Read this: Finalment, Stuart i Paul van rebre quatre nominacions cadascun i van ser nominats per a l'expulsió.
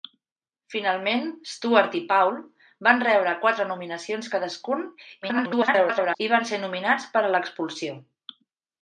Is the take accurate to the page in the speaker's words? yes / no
no